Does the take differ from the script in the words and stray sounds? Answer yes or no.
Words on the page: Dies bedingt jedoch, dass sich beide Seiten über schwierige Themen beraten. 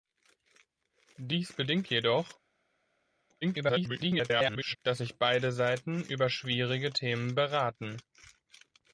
yes